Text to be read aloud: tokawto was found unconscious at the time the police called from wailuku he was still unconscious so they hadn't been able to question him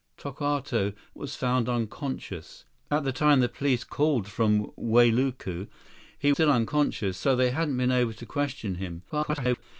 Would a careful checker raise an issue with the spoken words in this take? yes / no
yes